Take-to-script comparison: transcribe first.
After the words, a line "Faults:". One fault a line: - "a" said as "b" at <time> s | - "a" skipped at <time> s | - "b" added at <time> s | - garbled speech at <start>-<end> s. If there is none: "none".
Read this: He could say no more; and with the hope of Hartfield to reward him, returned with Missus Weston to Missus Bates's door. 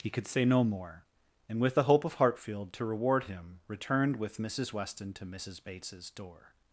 He could say no more; and with the hope of Hartfield to reward him, returned with Missus Weston to Missus Bates's door.
Faults:
none